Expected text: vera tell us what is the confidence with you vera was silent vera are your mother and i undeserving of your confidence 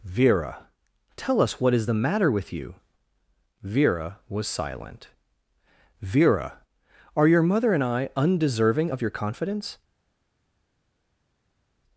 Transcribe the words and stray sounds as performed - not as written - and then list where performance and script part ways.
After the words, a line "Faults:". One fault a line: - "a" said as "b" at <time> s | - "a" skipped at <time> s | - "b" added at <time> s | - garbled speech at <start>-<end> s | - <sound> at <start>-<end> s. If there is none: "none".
vera tell us what is the matter with you vera was silent vera are your mother and i undeserving of your confidence
Faults:
- "confidence" said as "matter" at 1.9 s